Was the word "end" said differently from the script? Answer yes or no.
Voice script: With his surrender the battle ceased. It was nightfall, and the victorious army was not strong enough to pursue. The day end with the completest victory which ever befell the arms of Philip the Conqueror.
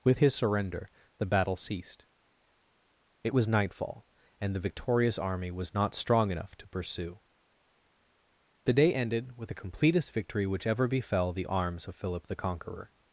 yes